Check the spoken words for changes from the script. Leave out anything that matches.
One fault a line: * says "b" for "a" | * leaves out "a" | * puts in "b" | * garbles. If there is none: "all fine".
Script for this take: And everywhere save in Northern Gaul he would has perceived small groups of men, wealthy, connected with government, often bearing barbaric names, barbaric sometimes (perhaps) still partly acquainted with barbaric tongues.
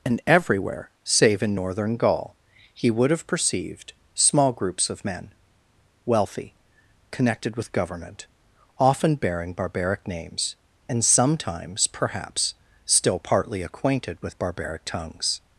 * says "have" for "has"
* says "and" for "barbaric"